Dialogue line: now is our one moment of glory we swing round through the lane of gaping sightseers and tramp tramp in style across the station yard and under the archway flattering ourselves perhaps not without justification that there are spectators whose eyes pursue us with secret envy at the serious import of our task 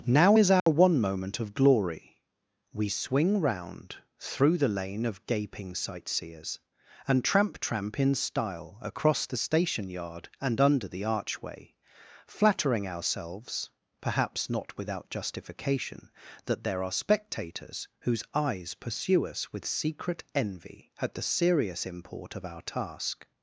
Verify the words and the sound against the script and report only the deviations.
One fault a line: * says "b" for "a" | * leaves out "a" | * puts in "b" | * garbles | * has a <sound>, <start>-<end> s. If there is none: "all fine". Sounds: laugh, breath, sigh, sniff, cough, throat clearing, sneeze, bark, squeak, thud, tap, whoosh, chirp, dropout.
* has a dropout, 0.6-0.7 s